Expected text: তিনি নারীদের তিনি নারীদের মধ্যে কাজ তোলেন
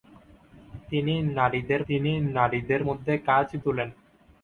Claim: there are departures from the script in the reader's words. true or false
false